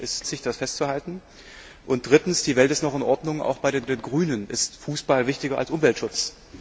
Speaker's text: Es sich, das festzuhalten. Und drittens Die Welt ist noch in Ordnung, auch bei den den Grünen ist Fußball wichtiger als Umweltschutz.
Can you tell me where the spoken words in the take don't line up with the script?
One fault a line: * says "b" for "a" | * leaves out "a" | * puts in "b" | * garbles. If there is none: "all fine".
all fine